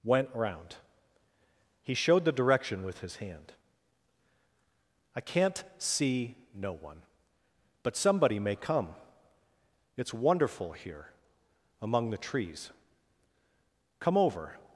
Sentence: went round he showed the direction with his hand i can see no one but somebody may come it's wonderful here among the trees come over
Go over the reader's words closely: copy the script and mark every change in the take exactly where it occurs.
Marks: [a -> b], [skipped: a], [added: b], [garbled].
went round he showed the direction with his hand i [can -> can't] see no one but somebody may come it's wonderful here among the trees come over